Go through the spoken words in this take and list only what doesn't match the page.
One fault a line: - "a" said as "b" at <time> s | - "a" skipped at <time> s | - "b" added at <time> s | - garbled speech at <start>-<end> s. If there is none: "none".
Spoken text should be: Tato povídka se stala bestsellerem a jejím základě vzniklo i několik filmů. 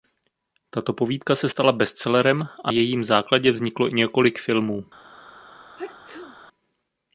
none